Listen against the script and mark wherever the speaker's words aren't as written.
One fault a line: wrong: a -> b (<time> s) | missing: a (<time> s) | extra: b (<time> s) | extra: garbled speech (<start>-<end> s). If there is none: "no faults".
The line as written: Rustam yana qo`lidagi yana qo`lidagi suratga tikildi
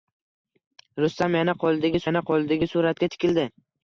no faults